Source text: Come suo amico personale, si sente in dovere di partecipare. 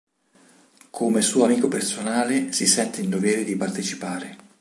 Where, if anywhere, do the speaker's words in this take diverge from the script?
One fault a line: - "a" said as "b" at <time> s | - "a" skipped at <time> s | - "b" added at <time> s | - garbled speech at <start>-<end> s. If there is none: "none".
none